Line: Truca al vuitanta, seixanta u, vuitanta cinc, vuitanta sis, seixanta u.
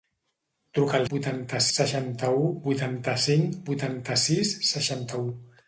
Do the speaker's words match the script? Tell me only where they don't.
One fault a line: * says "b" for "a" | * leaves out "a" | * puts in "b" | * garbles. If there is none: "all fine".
all fine